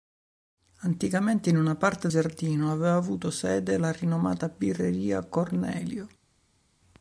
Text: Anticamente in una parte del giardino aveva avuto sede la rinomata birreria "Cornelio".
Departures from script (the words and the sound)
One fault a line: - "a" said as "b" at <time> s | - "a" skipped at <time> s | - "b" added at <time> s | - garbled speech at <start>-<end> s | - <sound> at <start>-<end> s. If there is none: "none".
- "del" skipped at 2.1 s